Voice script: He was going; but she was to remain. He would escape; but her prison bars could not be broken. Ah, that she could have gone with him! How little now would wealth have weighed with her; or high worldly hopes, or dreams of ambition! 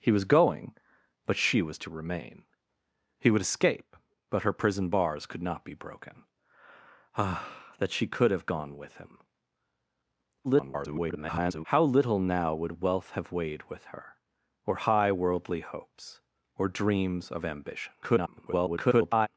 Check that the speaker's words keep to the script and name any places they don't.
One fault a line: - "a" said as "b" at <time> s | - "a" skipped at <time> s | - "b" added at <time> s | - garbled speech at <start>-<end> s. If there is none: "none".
- garbled speech at 10.4-11.6 s
- garbled speech at 18.0-19.3 s